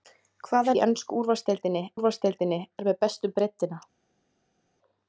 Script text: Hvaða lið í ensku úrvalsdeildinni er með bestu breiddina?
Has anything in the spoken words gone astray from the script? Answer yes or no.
yes